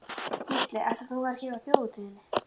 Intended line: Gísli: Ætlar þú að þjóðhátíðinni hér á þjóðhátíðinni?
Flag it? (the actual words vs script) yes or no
yes